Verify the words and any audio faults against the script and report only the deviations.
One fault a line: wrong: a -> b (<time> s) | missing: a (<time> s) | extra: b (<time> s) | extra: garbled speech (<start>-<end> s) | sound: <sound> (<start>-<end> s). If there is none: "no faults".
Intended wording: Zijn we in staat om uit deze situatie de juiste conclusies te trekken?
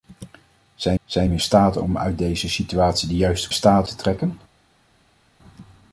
extra: zijn (1.1 s)
wrong: conclusies -> staat (3.5 s)